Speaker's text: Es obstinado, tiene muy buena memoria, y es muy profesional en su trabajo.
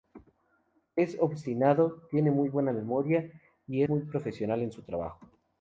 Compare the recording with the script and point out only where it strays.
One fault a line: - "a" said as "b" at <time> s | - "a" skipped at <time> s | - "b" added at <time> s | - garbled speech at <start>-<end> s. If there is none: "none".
- "es" skipped at 3.8 s